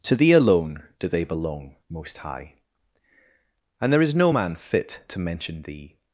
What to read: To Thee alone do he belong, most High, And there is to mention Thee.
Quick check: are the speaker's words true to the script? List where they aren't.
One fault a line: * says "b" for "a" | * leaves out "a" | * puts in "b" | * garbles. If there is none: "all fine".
* says "they" for "he"
* puts in "no man fit"